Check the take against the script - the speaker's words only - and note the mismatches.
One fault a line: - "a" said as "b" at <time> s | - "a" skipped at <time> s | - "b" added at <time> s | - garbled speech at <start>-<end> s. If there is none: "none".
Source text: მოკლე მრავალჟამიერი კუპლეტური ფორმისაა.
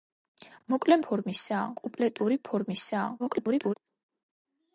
- "მრავალჟამიერი" said as "ფორმისაა" at 1.1 s
- garbled speech at 3.2-3.7 s